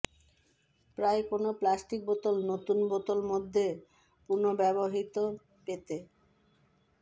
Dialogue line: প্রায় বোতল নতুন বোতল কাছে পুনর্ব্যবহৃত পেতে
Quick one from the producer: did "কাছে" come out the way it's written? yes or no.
no